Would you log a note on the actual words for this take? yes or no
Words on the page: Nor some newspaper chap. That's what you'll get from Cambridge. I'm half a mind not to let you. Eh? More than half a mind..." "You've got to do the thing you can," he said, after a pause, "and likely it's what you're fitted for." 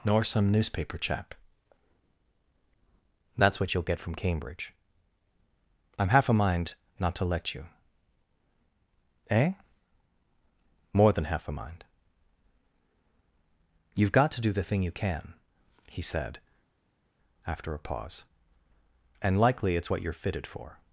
no